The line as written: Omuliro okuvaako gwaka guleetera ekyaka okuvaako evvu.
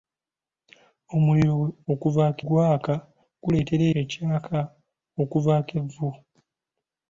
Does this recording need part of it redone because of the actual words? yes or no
no